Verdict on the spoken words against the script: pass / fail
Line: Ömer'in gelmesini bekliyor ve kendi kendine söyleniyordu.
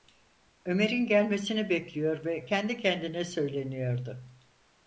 pass